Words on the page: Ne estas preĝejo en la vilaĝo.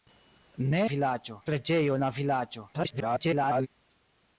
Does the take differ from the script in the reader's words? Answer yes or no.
yes